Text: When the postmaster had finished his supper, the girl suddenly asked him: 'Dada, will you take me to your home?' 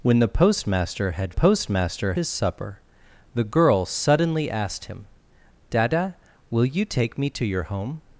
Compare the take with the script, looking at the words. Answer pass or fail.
fail